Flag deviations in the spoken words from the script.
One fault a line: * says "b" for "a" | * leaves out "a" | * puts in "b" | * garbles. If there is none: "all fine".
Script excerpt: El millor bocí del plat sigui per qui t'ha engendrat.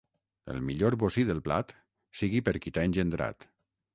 all fine